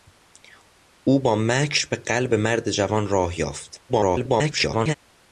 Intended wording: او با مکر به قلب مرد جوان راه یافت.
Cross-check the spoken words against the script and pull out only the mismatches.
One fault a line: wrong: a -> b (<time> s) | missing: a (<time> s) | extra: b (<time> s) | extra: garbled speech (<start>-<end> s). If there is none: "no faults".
extra: garbled speech (3.9-4.9 s)